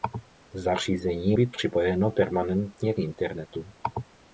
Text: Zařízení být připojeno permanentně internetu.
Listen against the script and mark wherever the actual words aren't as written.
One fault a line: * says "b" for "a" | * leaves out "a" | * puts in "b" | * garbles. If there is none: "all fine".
all fine